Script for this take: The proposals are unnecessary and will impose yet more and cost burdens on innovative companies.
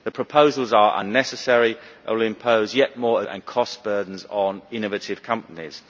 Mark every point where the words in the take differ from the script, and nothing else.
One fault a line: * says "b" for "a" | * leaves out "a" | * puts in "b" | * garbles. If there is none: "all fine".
all fine